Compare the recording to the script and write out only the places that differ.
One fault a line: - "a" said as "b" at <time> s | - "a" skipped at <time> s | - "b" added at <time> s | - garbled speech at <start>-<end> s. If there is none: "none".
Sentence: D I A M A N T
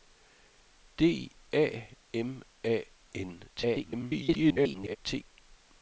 - "I" skipped at 1.3 s
- garbled speech at 3.5-5.0 s